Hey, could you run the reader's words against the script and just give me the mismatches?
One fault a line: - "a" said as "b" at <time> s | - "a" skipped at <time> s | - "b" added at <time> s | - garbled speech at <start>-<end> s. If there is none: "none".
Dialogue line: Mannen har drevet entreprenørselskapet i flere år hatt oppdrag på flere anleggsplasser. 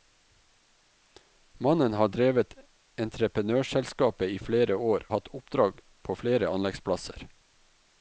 none